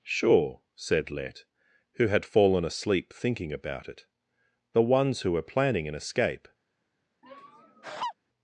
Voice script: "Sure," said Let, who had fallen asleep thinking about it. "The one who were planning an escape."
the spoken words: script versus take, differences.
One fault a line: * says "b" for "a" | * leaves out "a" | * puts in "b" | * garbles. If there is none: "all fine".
* says "ones" for "one"